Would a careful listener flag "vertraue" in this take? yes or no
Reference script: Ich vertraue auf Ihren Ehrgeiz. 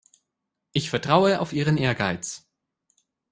no